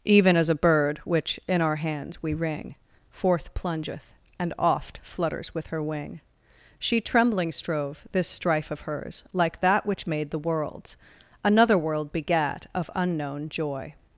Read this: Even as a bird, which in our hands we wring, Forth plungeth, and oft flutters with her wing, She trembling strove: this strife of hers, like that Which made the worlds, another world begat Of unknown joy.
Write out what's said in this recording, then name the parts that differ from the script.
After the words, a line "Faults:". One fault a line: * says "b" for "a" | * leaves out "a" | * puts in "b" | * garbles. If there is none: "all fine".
Even as a bird, which in our hands we wring, Forth plungeth, and oft flutters with her wing, She trembling strove: this strife of hers, like that Which made the worlds, another world begat Of unknown joy.
Faults:
all fine